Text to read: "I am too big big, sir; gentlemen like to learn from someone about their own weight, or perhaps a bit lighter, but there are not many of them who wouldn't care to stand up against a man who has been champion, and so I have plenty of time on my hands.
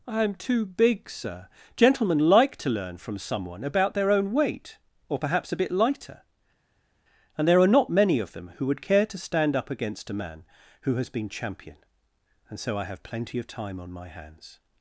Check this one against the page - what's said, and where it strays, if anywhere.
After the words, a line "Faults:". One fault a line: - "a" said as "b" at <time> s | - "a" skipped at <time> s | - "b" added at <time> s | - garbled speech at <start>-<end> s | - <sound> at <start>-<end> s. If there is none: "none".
"I am too big, sir; gentlemen like to learn from someone about their own weight, or perhaps a bit lighter, and there are not many of them who would care to stand up against a man who has been champion, and so I have plenty of time on my hands.
Faults:
- "big" skipped at 1.1 s
- "but" said as "and" at 7.4 s
- "wouldn't" said as "would" at 8.7 s